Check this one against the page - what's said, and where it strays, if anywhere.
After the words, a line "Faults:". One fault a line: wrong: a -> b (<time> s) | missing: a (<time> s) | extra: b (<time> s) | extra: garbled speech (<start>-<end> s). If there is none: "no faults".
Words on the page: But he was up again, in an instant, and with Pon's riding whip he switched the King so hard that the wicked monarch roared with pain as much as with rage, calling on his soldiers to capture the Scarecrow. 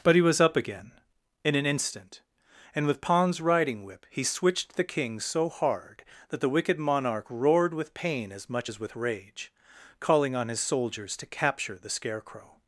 But he was up again, in an instant, and with Pon's riding whip he switched the King so hard that the wicked monarch roared with pain as much as with rage, calling on his soldiers to capture the Scarecrow.
Faults:
no faults